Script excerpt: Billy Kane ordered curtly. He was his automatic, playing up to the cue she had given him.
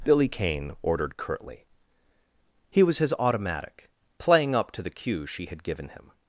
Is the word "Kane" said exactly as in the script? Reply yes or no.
yes